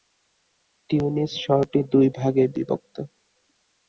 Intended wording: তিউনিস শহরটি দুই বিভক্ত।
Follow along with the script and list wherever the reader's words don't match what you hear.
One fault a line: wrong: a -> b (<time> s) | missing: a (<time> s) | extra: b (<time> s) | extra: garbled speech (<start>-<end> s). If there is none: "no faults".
extra: ভাগে (2.2 s)